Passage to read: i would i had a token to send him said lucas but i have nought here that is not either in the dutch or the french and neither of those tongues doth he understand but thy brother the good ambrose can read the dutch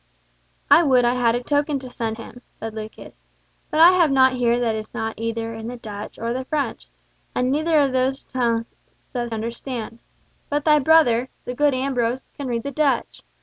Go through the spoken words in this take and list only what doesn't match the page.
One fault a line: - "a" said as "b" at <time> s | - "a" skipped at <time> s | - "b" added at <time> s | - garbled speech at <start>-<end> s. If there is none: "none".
- "he" skipped at 9.3 s